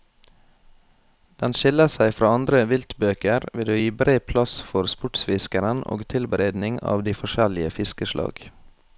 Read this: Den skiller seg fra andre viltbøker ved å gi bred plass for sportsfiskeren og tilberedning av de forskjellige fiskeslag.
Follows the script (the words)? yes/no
yes